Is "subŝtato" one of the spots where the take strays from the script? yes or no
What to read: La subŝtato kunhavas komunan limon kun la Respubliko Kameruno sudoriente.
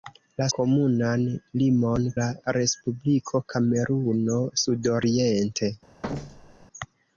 yes